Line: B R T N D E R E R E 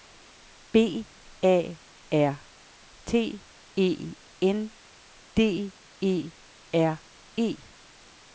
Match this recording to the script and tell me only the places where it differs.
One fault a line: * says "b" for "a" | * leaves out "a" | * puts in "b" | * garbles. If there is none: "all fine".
* puts in "A"
* puts in "E"
* leaves out "R E"